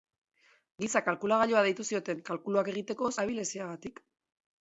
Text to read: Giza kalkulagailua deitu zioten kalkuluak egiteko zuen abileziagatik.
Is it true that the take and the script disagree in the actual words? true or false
true